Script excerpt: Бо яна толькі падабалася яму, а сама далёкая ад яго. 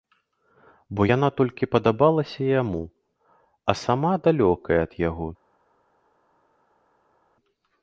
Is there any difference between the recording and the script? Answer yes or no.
no